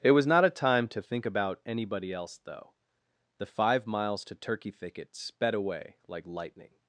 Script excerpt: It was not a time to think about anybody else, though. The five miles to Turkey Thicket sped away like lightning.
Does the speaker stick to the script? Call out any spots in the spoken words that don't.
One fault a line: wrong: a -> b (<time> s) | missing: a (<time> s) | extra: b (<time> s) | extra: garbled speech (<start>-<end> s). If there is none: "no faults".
no faults